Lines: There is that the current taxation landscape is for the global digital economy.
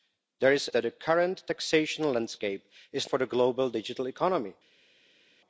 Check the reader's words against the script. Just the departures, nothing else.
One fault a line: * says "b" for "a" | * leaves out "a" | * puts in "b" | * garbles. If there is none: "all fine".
all fine